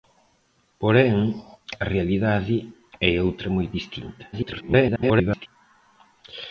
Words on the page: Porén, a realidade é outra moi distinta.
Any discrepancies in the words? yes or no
yes